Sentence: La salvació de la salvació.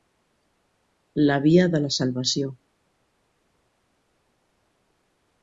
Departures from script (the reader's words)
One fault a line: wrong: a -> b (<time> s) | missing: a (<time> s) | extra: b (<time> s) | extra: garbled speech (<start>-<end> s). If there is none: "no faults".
wrong: salvació -> via (1.4 s)